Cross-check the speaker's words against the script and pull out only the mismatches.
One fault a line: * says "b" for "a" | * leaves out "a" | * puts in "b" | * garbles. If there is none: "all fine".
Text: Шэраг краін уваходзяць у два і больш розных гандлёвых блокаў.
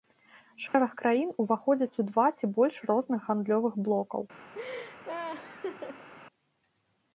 * says "ці" for "і"